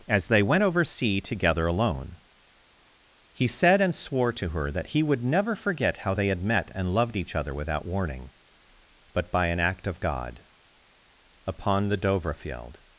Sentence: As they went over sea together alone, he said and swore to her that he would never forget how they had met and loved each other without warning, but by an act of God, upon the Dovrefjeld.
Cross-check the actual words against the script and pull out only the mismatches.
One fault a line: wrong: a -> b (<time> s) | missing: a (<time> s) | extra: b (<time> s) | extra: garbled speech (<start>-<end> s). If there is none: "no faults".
no faults